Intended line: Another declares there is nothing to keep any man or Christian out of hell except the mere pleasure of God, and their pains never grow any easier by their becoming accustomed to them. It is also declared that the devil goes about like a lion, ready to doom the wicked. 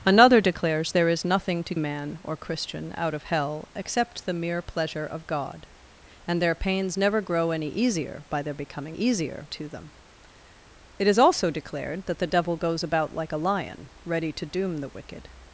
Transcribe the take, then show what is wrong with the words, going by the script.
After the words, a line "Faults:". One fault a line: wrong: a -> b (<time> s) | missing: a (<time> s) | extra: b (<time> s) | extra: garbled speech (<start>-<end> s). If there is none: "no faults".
Another declares there is nothing to man or Christian out of hell except the mere pleasure of God, and their pains never grow any easier by their becoming easier to them. It is also declared that the devil goes about like a lion, ready to doom the wicked.
Faults:
missing: keep any (1.8 s)
wrong: accustomed -> easier (8.9 s)